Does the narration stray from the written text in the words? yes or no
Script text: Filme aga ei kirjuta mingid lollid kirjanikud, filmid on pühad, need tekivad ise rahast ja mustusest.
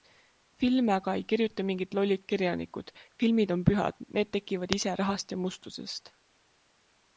no